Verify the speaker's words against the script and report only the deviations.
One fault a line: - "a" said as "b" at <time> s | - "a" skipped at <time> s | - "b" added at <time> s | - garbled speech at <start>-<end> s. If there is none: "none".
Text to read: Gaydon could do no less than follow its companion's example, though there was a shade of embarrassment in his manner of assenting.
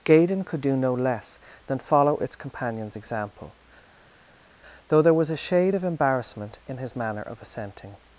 none